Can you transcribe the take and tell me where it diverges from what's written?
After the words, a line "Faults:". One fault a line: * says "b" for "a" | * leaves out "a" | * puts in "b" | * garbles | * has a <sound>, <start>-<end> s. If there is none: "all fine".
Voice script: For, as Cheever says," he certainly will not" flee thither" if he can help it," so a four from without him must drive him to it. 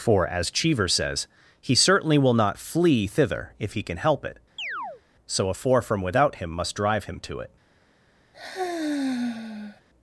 For, as Cheever says," he certainly will not" flee thither" if he can help it," so a four from without him must drive him to it.
Faults:
* has a chirp, 4.6-5.0 s
* has a sigh, 8.3-9.8 s